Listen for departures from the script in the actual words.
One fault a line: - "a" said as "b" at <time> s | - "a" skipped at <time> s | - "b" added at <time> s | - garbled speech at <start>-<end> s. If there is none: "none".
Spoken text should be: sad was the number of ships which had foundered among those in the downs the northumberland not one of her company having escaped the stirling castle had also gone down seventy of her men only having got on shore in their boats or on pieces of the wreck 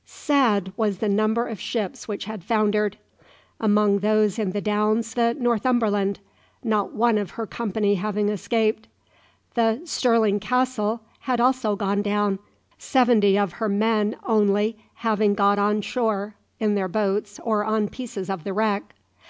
none